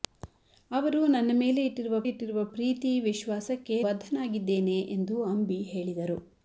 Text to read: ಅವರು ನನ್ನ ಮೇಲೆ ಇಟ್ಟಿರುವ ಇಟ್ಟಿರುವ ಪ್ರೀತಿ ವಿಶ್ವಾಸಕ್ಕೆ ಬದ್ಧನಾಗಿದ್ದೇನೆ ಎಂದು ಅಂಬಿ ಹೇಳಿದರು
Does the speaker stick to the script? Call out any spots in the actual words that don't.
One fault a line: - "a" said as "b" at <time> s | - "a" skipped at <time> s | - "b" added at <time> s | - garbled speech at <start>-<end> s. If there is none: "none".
none